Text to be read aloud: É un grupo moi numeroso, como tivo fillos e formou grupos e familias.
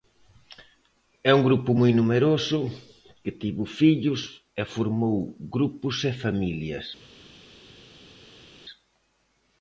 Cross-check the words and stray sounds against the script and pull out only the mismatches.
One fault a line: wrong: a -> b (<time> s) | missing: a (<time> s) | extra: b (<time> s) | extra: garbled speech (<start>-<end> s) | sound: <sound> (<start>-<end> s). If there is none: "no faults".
wrong: como -> que (3.2 s)